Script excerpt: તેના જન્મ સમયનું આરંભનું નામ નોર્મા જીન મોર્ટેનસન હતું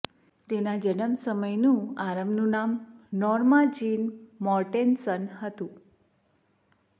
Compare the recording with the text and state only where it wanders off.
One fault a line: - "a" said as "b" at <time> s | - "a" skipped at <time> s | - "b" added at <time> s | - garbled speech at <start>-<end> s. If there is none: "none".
none